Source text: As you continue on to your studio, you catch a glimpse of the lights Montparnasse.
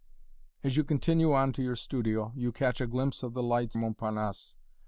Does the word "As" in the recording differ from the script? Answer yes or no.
no